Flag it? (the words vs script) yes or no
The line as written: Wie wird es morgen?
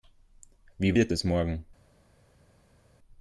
no